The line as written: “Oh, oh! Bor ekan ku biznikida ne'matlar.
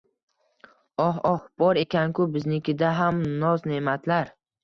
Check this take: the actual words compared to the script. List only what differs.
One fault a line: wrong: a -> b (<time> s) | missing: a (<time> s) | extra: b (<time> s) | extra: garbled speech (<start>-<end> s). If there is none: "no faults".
extra: ham noz (3.0 s)